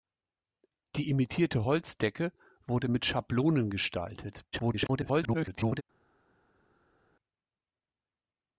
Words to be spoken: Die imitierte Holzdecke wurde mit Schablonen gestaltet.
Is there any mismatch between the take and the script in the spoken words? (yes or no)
yes